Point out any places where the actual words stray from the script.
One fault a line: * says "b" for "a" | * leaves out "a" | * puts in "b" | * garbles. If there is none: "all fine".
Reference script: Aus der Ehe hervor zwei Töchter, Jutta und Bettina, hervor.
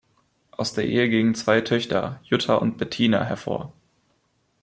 * says "gingen" for "hervor"